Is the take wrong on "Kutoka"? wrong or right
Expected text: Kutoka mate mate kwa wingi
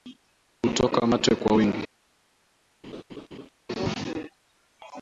right